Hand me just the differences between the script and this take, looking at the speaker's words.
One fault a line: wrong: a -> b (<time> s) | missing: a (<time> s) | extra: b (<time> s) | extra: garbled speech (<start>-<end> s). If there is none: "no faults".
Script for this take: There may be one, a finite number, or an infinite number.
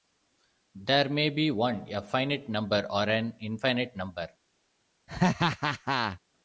no faults